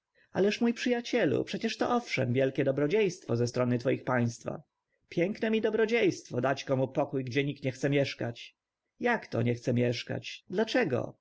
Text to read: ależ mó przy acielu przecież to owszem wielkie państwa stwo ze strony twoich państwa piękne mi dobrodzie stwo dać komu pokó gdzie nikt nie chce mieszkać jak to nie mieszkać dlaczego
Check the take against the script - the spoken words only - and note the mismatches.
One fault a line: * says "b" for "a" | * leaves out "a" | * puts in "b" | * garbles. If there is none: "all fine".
* says "dobrodzie" for "państwa"
* puts in "chce"